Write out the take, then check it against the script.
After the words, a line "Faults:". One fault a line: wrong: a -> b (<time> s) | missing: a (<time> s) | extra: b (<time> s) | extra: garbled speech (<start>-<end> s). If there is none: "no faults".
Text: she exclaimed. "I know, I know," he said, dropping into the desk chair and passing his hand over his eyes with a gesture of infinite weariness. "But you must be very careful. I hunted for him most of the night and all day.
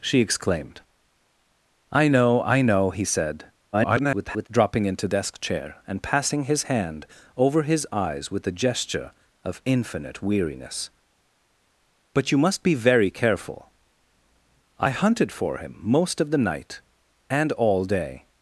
she exclaimed. "I know, I know," he said, [garbled] dropping into desk chair and passing his hand over his eyes with a gesture of infinite weariness. "But you must be very careful. I hunted for him most of the night and all day.
Faults:
extra: garbled speech (3.7-4.5 s)
missing: the (5.1 s)